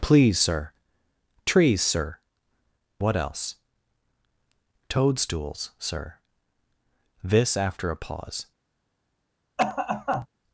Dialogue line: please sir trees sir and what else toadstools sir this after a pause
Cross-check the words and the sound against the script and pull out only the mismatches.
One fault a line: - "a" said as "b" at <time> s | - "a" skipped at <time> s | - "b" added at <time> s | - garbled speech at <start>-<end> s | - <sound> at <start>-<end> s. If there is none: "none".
- "and" skipped at 2.2 s
- cough at 9.6-10.3 s